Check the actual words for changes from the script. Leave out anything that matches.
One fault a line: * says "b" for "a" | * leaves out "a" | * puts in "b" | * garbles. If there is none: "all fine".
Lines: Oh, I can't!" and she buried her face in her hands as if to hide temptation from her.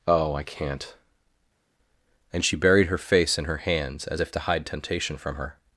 all fine